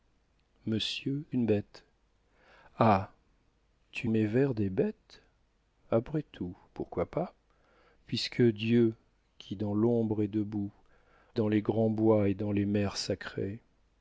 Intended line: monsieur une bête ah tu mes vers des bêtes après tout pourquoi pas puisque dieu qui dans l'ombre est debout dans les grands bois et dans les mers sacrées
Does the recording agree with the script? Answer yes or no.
yes